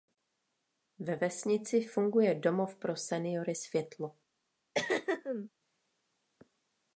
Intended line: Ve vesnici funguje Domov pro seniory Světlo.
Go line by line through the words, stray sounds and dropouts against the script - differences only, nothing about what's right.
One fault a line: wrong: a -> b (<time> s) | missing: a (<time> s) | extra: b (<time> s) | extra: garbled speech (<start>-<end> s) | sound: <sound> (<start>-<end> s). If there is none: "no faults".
sound: throat clearing (4.7-5.5 s)